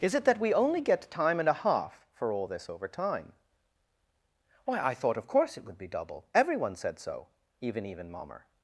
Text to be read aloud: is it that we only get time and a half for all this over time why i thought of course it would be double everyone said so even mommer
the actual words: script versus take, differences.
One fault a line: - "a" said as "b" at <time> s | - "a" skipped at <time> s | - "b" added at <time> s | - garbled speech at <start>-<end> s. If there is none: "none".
- "even" added at 7.9 s